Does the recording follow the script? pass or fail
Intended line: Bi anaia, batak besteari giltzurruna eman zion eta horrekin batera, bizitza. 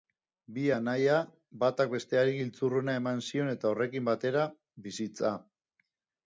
pass